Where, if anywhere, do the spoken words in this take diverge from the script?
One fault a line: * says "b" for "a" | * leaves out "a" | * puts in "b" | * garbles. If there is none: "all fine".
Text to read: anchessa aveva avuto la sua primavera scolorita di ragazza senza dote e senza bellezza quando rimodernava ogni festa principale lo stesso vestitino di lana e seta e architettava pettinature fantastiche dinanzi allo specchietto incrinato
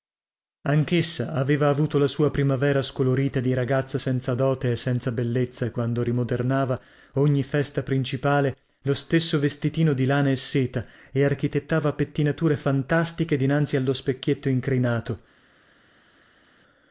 all fine